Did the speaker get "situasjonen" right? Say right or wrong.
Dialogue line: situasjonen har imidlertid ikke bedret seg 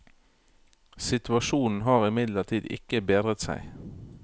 right